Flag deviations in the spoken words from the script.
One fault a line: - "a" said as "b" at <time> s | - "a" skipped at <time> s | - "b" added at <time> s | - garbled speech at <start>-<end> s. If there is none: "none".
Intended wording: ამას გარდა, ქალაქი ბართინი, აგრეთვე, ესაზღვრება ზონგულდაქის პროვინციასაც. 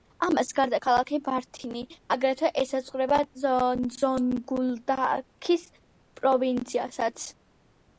none